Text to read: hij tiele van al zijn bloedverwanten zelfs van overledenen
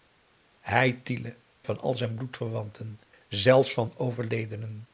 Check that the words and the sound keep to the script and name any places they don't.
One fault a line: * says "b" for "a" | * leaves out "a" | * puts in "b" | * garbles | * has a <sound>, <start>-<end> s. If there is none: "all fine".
all fine